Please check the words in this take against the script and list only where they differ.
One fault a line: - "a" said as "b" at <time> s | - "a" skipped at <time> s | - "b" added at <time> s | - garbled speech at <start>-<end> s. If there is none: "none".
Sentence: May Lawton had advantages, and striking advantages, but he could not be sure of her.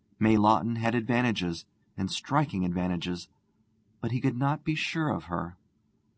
none